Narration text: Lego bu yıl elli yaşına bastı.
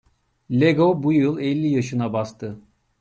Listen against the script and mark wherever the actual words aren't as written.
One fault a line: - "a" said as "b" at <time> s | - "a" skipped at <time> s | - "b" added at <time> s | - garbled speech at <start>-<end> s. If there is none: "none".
none